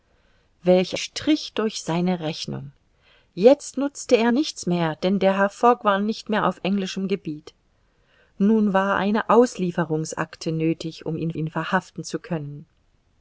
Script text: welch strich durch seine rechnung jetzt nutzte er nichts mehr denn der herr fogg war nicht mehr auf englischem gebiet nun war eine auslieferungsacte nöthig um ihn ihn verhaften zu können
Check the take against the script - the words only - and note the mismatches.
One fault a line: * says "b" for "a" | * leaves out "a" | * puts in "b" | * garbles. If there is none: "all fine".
all fine